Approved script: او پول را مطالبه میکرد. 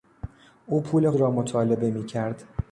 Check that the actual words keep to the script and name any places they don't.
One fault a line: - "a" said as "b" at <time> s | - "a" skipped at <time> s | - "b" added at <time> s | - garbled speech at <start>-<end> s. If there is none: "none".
none